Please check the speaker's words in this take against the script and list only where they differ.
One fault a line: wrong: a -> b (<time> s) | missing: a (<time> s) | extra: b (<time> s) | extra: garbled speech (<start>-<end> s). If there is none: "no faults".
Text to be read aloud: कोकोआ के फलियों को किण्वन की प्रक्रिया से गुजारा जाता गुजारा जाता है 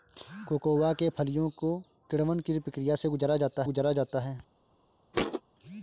no faults